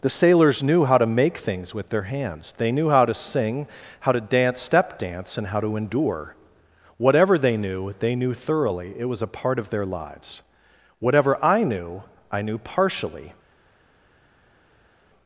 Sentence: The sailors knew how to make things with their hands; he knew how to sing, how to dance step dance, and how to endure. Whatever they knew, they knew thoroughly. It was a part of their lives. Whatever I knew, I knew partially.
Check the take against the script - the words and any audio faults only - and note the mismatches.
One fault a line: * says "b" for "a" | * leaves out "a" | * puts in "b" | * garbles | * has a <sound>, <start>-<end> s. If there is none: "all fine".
* says "they" for "he"